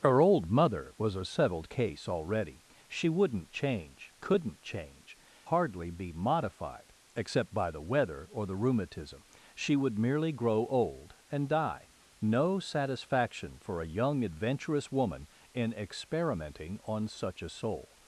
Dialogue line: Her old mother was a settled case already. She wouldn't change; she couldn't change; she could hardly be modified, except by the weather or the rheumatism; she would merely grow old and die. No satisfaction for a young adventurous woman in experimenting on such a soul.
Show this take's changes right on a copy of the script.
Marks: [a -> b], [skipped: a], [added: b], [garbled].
Her old mother was a settled case already. She wouldn't change; [skipped: she] couldn't change; [skipped: she could] hardly be modified, except by the weather or the rheumatism; she would merely grow old and die. No satisfaction for a young adventurous woman in experimenting on such a soul.